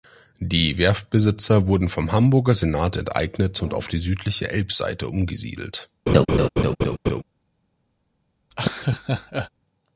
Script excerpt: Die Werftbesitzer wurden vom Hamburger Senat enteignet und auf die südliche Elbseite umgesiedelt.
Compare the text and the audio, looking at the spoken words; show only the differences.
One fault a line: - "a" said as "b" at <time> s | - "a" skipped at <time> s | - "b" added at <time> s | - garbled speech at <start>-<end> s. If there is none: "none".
none